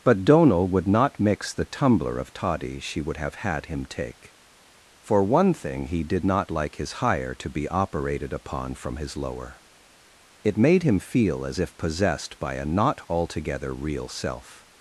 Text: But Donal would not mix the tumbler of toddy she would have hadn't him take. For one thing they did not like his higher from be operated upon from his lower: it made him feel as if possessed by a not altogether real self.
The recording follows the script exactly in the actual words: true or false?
false